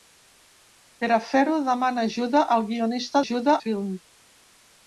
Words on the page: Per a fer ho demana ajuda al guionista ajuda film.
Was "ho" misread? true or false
false